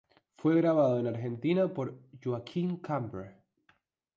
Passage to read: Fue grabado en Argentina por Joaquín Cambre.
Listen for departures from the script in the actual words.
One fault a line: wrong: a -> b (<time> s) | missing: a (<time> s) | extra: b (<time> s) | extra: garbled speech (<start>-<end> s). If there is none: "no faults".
no faults